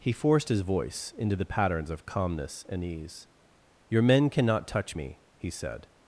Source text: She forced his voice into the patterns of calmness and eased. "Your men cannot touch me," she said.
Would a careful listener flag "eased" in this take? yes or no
yes